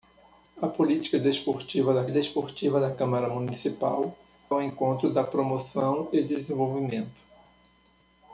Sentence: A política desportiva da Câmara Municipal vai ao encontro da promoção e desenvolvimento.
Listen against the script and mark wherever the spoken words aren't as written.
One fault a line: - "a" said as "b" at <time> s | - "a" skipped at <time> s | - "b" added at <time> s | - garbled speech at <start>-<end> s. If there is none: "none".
- "desportiva da" added at 2.1 s
- "vai" skipped at 4.1 s